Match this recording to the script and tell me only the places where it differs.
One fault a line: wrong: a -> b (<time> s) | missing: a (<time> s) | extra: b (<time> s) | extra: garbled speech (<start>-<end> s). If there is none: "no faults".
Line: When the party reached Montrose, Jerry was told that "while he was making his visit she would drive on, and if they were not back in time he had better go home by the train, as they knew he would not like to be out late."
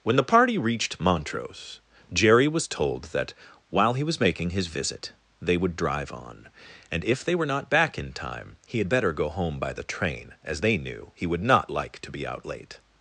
wrong: she -> they (5.4 s)